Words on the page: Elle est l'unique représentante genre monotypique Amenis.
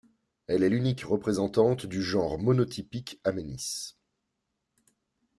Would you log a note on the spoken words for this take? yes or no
yes